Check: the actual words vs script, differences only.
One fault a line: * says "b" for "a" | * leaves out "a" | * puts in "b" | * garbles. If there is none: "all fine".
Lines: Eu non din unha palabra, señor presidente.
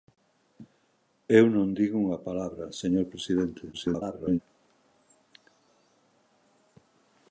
* garbles